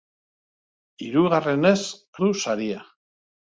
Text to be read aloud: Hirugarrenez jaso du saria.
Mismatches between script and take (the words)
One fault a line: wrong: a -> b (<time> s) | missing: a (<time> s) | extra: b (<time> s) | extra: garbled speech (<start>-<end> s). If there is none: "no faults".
missing: jaso (1.8 s)